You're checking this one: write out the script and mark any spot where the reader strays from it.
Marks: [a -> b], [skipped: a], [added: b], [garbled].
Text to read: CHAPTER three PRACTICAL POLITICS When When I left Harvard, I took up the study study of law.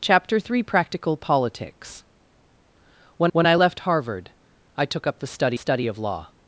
CHAPTER three PRACTICAL POLITICS When When I left Harvard, I took up the study study of law.